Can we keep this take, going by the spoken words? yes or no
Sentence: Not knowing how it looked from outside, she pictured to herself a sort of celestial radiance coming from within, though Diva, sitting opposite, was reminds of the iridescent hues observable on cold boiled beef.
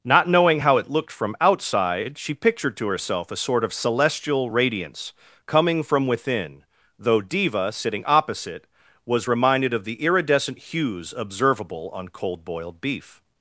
no